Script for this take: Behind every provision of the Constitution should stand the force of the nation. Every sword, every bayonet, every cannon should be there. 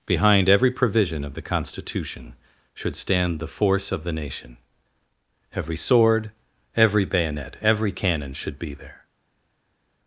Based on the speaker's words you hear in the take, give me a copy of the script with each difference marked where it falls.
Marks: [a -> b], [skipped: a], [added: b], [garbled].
Behind every provision of the Constitution should stand the force of the nation. Every sword, every bayonet, every cannon should be there.